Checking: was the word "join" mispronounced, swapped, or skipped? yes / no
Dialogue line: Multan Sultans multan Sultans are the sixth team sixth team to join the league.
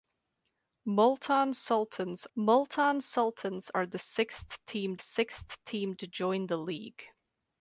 no